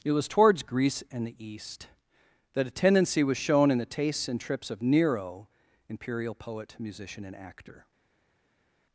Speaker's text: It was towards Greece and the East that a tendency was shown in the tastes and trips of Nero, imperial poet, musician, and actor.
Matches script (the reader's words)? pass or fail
pass